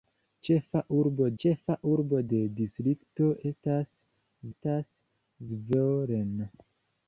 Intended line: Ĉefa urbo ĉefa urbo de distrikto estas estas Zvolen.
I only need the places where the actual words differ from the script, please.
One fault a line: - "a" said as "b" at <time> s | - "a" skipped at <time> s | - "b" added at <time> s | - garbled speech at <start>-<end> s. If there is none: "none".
none